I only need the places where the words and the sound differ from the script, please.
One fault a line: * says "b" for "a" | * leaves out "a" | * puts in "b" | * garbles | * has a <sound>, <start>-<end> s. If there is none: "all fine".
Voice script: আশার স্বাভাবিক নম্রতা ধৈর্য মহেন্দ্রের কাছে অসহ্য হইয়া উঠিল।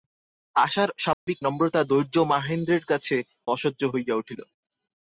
* has a dropout, 1.1-1.3 s